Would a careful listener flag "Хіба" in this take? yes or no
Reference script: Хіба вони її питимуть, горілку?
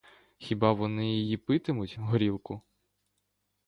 no